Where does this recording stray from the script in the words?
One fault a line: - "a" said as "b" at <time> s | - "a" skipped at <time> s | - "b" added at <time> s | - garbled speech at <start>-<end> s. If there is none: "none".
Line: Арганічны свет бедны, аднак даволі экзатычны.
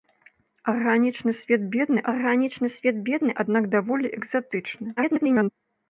- "арганічны свет бедны" added at 2.1 s
- garbled speech at 5.0-5.5 s